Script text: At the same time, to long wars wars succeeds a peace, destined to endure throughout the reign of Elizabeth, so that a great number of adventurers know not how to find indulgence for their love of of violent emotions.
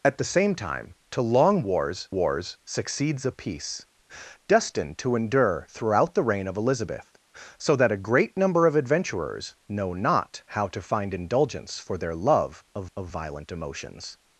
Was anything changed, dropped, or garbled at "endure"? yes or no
no